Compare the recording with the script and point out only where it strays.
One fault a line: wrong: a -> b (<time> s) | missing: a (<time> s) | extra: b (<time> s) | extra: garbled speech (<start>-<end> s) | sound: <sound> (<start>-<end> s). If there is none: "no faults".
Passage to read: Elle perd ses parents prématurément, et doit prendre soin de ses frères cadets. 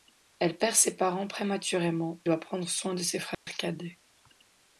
missing: et (2.2 s)
sound: dropout (3.3-3.5 s)